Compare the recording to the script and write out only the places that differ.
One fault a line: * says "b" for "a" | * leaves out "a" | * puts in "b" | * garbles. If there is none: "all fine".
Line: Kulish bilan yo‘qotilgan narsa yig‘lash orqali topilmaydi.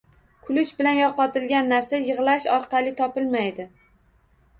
all fine